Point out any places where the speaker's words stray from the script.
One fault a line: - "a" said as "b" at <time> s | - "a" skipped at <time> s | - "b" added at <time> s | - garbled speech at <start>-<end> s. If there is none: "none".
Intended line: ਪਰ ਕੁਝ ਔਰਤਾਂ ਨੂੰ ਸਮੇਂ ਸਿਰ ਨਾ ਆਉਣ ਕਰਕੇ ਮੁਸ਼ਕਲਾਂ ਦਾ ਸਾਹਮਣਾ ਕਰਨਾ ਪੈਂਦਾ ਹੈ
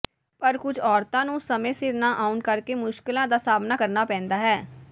none